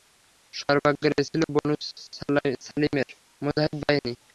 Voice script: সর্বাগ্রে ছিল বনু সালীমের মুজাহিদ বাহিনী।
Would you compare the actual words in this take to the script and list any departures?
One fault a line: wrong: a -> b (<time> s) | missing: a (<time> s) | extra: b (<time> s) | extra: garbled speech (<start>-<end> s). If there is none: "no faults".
no faults